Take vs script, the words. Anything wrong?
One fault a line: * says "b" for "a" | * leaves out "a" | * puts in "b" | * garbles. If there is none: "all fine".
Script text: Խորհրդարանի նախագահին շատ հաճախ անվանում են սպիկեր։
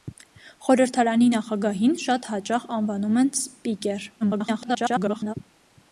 * garbles